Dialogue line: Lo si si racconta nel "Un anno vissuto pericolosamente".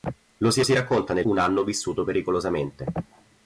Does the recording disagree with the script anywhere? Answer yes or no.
no